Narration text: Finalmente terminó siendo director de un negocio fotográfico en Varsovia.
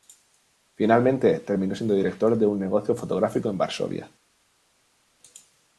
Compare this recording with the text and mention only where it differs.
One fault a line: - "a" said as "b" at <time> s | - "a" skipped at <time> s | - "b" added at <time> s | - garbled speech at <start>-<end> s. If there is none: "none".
none